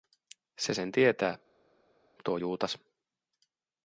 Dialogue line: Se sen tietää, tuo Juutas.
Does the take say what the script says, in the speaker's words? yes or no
yes